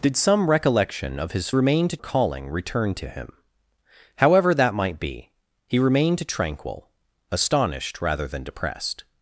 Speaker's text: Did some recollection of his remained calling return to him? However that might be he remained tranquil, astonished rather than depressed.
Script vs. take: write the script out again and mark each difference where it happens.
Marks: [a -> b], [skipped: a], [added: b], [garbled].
Did some recollection of his remained calling return to him? However that might be he remained tranquil, astonished rather than depressed.